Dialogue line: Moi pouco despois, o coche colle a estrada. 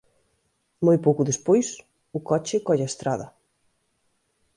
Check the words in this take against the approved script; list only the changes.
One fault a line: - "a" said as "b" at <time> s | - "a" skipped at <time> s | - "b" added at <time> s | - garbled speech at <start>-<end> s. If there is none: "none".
none